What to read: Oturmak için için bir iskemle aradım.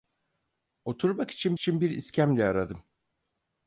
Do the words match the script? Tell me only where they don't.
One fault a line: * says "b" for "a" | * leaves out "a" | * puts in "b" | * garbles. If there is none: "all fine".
all fine